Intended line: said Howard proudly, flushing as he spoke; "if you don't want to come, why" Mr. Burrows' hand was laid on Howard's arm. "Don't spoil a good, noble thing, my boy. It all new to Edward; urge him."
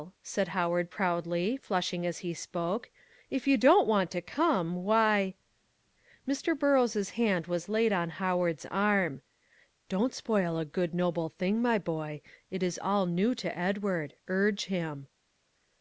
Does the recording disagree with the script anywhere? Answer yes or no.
yes